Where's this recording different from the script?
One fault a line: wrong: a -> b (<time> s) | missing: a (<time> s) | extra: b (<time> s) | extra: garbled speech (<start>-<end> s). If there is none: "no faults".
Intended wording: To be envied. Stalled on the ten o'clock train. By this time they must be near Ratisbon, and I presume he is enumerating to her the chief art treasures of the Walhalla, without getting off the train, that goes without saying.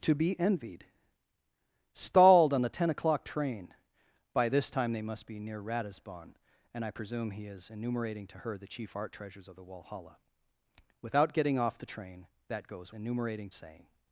wrong: without -> enumerating (12.9 s)